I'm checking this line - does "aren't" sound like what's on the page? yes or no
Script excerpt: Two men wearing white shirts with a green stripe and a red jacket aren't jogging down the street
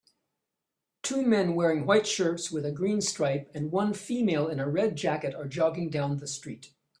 no